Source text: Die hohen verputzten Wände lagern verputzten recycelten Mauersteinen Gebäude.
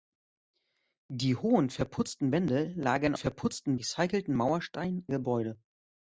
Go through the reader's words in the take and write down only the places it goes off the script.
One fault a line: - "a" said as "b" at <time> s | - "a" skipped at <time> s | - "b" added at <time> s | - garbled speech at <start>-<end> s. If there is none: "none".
none